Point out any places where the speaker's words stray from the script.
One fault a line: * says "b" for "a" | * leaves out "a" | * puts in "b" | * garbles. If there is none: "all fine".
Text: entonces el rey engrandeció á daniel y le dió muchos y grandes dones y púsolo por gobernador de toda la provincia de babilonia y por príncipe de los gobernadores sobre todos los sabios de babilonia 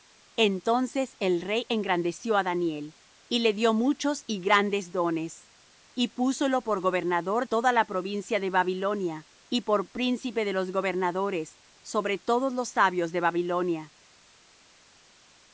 * leaves out "de"